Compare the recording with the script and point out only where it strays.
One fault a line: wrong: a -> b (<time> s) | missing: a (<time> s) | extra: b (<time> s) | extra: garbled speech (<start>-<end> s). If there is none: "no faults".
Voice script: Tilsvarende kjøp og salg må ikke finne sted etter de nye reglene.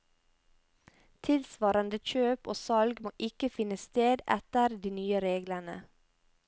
no faults